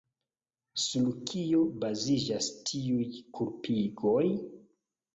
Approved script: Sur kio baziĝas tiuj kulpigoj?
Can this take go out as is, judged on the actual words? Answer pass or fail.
pass